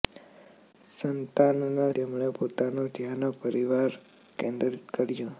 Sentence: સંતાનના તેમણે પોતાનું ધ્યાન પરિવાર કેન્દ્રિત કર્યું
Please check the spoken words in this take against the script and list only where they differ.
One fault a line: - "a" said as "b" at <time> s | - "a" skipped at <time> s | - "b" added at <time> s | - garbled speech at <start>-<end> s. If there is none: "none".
none